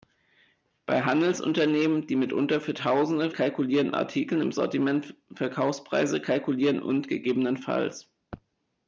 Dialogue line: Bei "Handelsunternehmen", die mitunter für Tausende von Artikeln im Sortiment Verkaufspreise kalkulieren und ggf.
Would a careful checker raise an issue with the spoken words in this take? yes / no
yes